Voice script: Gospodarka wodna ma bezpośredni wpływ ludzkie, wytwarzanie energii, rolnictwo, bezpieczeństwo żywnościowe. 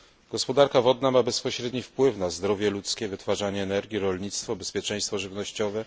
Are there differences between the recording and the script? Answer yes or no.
yes